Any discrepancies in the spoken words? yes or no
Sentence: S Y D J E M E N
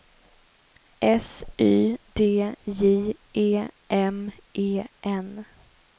no